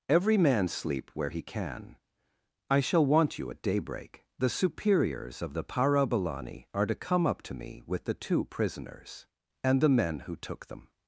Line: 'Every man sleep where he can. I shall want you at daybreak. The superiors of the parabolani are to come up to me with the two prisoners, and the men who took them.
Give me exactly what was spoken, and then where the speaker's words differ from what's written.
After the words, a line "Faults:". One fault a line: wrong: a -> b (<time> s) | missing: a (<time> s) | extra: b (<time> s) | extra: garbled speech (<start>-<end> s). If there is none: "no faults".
'Every man sleep where he can. I shall want you at daybreak. The superiors of the parabolani are to come up to me with the two prisoners, and the men who took them.
Faults:
no faults